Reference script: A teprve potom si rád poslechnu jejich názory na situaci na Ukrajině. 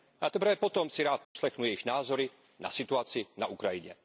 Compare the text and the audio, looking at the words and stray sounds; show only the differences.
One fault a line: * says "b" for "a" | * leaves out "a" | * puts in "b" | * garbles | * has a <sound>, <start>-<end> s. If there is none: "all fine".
* has a dropout, 1.2-1.4 s